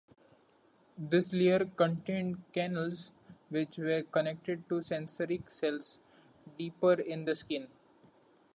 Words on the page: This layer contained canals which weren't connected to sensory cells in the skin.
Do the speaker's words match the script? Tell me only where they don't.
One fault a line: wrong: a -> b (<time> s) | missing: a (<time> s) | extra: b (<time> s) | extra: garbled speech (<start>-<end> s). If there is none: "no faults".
wrong: weren't -> were (3.8 s)
extra: deeper (6.6 s)